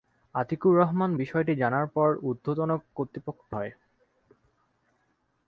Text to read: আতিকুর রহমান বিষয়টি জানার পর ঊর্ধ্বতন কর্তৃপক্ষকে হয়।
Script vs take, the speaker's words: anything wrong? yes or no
no